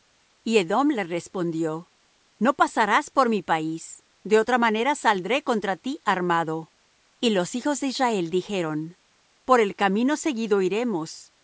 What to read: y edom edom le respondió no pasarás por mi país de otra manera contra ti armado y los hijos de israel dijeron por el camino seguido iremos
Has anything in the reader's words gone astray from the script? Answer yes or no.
yes